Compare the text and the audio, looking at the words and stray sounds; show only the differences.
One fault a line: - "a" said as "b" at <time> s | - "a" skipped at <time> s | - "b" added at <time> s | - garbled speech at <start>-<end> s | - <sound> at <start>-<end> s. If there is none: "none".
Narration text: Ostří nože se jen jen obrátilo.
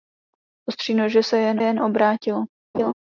- laugh at 2.7-2.9 s